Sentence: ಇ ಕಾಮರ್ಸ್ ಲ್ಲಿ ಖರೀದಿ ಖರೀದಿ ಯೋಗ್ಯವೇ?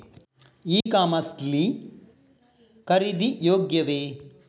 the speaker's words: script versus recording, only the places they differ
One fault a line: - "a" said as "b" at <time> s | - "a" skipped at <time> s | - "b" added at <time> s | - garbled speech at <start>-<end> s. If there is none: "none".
- "ಖರೀದಿ" skipped at 3.4 s